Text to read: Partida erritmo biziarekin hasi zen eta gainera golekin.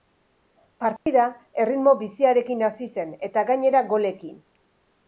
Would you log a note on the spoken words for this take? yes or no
no